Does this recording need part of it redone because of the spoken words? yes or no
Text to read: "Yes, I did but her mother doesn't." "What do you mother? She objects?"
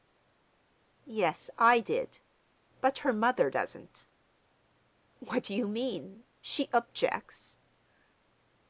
yes